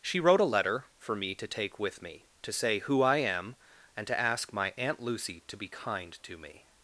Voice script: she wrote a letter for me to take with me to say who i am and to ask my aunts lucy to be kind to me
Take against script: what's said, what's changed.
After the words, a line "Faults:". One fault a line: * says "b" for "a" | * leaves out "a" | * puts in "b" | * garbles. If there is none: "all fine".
she wrote a letter for me to take with me to say who i am and to ask my aunt lucy to be kind to me
Faults:
* says "aunt" for "aunts"